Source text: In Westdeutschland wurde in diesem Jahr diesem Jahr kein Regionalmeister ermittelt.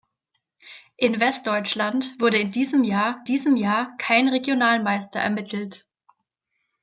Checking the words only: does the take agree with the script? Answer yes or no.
yes